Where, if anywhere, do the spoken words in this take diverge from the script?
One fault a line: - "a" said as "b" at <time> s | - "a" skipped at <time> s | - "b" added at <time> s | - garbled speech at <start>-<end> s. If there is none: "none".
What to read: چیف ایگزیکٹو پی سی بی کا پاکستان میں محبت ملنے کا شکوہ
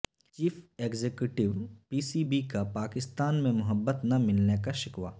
- "نہ" added at 4.0 s